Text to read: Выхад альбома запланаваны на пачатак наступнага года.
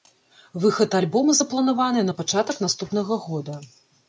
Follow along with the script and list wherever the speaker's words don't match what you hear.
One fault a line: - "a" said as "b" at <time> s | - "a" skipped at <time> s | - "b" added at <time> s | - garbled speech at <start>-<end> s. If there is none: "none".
none